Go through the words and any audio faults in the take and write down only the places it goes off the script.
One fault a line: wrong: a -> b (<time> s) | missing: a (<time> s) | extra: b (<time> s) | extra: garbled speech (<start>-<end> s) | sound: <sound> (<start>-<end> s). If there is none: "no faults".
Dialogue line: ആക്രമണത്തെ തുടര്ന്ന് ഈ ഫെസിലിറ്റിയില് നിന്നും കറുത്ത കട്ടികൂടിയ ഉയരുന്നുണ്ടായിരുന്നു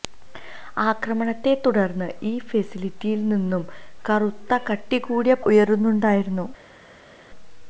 no faults